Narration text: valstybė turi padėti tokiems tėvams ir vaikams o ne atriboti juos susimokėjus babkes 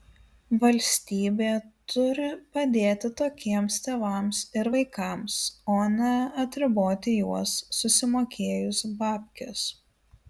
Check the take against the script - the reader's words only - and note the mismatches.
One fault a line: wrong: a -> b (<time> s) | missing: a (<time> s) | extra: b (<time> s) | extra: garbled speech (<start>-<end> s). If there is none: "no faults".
no faults